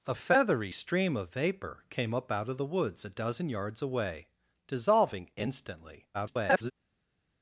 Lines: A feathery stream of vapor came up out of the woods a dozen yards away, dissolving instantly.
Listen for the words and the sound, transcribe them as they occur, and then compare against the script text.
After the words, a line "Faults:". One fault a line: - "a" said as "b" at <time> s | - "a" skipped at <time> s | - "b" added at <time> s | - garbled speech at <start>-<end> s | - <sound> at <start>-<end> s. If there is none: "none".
A feathery stream of vapor came up out of the woods a dozen yards away, dissolving instantly. [garbled]
Faults:
- garbled speech at 6.1-6.7 s